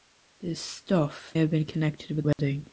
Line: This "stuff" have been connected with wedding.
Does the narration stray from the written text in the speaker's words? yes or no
no